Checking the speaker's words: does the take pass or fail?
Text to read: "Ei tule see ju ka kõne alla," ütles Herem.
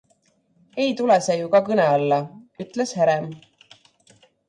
pass